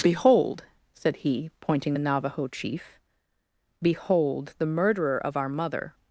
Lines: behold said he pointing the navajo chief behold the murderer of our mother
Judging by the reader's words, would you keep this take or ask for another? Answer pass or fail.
pass